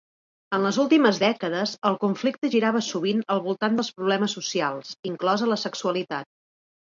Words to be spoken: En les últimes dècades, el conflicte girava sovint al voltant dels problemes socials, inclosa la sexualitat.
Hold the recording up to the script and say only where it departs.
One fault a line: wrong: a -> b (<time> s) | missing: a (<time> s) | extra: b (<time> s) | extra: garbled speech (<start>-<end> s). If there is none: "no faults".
no faults